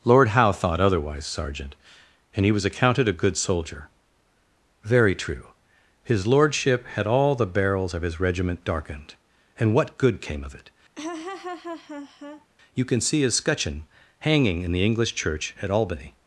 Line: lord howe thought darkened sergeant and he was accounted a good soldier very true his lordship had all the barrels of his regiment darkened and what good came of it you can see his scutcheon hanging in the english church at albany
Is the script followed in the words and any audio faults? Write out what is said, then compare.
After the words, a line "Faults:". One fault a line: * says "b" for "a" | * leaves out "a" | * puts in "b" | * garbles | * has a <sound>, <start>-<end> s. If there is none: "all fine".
lord howe thought otherwise sergeant and he was accounted a good soldier very true his lordship had all the barrels of his regiment darkened and what good came of it you can see his scutcheon hanging in the english church at albany
Faults:
* says "otherwise" for "darkened"
* has a laugh, 11.0-12.5 s